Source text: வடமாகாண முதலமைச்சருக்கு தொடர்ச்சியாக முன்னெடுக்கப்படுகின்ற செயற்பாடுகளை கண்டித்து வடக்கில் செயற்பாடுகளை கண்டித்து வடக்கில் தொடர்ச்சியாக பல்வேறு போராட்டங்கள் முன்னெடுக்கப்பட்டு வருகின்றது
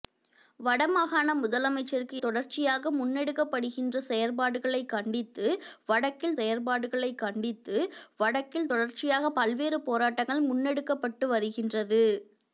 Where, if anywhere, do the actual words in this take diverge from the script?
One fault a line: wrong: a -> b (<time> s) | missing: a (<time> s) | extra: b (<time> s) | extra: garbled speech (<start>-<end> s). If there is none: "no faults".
no faults